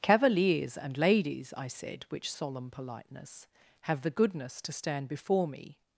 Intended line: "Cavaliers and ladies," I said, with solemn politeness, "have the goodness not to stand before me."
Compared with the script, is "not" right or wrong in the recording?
wrong